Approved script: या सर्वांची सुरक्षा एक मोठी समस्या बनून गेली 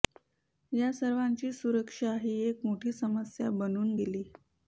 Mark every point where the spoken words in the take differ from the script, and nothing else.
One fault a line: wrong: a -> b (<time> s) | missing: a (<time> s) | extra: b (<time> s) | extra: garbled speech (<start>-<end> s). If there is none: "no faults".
extra: ही (2.2 s)